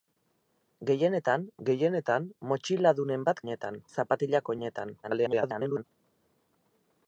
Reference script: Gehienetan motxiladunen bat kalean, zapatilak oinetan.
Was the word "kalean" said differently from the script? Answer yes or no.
yes